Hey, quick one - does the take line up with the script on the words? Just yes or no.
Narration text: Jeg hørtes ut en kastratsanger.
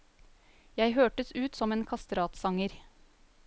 no